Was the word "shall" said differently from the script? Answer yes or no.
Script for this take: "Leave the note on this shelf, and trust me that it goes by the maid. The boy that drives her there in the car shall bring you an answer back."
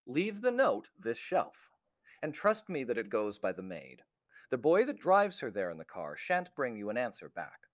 yes